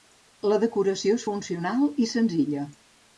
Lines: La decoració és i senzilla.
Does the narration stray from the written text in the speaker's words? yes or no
yes